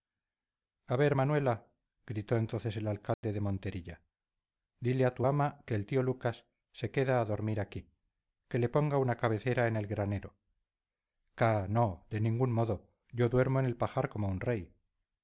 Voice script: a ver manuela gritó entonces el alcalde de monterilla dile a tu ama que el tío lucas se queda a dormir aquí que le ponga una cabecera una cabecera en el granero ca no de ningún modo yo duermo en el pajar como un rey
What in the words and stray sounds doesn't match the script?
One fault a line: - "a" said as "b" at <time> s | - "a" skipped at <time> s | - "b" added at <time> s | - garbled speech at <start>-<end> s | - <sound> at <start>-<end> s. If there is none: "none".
- dropout at 3.1-3.2 s
- "una cabecera" skipped at 9.7 s